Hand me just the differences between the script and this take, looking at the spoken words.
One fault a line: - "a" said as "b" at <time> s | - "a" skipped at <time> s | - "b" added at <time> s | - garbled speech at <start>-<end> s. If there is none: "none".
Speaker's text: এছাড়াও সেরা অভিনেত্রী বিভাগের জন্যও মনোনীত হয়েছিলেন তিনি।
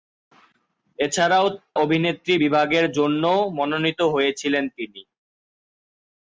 - "সেরা" skipped at 1.4 s